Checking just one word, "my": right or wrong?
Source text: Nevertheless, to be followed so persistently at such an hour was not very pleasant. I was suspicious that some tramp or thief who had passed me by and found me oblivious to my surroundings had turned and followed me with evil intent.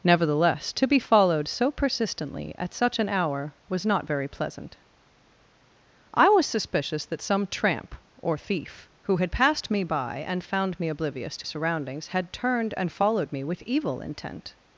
wrong